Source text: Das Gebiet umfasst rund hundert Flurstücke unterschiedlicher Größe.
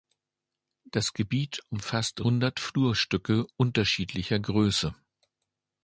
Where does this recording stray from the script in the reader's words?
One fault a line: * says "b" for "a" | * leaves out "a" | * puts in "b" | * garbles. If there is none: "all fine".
* leaves out "rund"